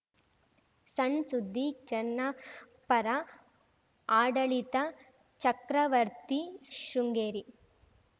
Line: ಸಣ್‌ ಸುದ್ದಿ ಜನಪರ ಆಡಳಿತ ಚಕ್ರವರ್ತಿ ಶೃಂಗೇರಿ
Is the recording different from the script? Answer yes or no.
no